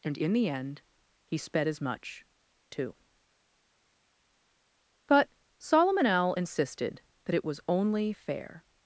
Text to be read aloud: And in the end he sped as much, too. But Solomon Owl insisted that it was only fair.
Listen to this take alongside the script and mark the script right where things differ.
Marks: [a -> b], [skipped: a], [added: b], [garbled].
And in the end he sped as much, too. But Solomon Owl insisted that it was only fair.